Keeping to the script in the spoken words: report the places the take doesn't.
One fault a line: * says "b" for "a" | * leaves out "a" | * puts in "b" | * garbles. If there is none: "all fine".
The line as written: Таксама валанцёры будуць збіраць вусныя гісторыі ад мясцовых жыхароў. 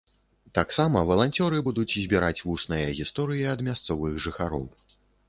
all fine